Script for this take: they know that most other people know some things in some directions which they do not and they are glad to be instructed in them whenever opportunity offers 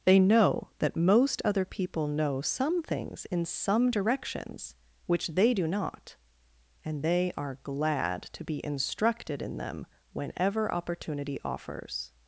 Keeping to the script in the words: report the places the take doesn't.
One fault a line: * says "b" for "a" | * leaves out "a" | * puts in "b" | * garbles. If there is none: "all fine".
all fine